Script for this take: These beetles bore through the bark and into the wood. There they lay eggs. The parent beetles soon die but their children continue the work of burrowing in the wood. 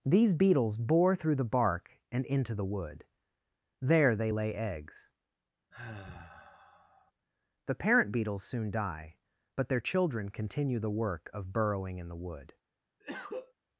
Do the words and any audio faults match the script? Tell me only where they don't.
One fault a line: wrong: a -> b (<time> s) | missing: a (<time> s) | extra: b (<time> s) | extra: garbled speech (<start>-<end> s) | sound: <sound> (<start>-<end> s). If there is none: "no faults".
sound: sigh (5.7-7.1 s)
sound: cough (13.0-13.5 s)